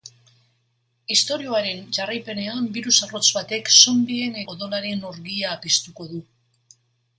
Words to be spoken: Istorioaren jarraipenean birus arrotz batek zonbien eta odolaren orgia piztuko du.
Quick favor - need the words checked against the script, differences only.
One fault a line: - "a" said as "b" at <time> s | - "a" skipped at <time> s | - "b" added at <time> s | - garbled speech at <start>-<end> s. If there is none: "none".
- "eta" skipped at 4.4 s